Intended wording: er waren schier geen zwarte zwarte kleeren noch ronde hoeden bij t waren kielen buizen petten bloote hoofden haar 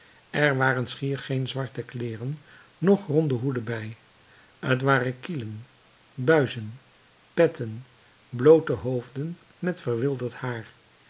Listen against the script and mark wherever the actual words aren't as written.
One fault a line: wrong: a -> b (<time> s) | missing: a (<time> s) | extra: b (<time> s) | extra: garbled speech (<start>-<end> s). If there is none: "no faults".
missing: zwarte (1.8 s)
extra: met verwilderd (9.6 s)